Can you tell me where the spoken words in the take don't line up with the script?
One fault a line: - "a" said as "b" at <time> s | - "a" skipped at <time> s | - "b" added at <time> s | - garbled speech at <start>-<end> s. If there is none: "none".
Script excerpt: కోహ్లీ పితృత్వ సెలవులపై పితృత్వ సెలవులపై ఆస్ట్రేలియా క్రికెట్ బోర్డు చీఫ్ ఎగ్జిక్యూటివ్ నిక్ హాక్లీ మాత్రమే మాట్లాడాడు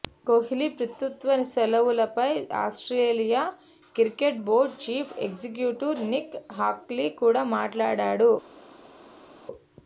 - "పితృత్వ సెలవులపై" skipped at 2.3 s
- "మాత్రమే" said as "కూడా" at 7.2 s